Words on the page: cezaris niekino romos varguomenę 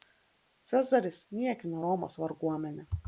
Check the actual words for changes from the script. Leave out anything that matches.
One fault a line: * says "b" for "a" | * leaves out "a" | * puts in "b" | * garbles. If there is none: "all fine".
all fine